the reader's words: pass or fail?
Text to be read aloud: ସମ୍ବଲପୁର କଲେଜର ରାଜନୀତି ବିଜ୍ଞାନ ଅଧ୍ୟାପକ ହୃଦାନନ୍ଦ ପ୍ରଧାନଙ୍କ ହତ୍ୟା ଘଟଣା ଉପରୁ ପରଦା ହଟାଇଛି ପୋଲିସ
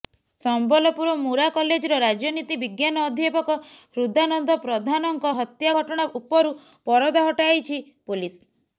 fail